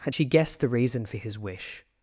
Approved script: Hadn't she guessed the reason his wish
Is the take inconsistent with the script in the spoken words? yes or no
yes